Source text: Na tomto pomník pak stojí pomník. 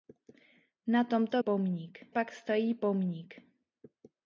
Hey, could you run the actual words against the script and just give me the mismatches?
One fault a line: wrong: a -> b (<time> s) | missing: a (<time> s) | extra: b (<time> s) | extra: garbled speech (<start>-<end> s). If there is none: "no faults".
no faults